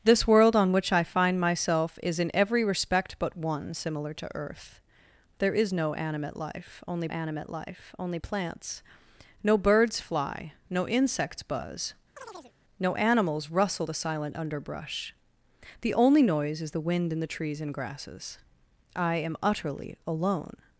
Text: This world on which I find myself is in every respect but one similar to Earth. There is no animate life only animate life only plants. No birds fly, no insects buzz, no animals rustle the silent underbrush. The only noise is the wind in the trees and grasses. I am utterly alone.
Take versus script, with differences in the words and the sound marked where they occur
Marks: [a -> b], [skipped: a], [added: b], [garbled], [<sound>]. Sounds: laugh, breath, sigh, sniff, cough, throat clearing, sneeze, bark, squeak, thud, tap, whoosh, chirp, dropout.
This world on which I find myself is in every respect but one similar to Earth. There is no animate life only animate life only plants. No birds fly, no insects buzz, [chirp] no animals rustle the silent underbrush. The only noise is the wind in the trees and grasses. I am utterly alone.